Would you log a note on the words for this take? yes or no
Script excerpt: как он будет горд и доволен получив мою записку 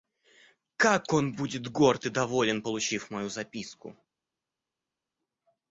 no